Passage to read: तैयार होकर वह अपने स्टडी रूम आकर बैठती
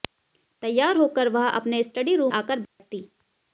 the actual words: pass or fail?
pass